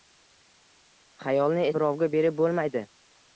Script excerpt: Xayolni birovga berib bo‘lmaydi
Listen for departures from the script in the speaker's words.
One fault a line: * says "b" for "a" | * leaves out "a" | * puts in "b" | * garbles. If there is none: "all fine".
all fine